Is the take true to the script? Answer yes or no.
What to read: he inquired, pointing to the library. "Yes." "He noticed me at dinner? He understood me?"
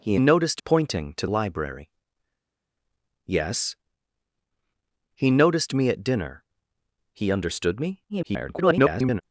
no